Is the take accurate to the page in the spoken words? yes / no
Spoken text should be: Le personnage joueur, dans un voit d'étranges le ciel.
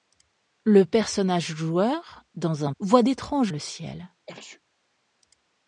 yes